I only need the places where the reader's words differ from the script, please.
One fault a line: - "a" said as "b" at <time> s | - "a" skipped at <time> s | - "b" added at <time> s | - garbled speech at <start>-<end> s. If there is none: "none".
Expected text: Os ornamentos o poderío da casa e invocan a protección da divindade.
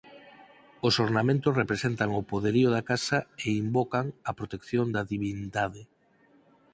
- "representan" added at 1.6 s